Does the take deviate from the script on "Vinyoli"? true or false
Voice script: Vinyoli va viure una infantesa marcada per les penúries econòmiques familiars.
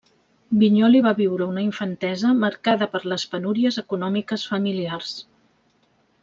false